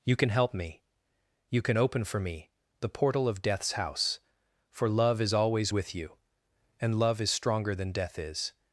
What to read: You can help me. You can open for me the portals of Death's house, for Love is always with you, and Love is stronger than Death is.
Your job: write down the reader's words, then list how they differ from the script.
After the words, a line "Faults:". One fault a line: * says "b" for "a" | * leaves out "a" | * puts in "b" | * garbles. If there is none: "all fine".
You can help me. You can open for me the portal of Death's house, for Love is always with you, and Love is stronger than Death is.
Faults:
* says "portal" for "portals"